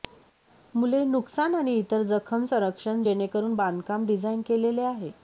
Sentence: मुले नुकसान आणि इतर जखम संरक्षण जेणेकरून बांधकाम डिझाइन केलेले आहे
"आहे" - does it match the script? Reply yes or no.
yes